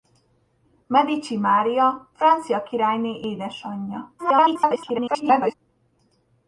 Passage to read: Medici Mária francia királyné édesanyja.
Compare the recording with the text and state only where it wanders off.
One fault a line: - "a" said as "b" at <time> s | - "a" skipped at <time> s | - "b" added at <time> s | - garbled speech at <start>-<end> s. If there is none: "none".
- garbled speech at 4.2-5.5 s